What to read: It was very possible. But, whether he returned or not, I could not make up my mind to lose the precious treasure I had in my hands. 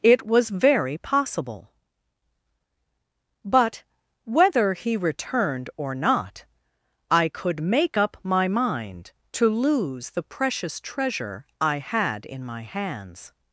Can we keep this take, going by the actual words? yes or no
no